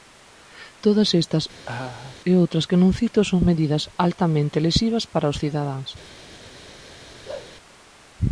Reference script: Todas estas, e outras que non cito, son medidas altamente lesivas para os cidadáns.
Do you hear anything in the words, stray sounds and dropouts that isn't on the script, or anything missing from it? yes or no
yes